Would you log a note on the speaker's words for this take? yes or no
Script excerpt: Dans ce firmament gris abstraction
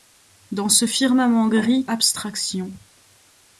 no